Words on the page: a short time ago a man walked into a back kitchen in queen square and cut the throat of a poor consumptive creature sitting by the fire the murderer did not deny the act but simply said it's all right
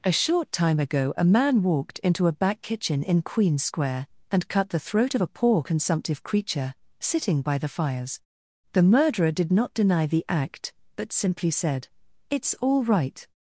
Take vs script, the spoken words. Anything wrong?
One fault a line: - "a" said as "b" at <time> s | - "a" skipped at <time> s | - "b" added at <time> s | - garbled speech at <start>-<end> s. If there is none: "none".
- "fire" said as "fires" at 7.7 s